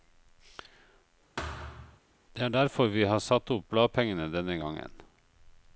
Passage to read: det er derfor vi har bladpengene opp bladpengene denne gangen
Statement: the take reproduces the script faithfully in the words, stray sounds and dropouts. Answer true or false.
false